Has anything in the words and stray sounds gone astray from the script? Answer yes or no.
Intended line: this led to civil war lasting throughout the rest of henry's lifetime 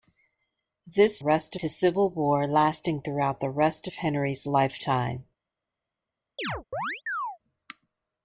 yes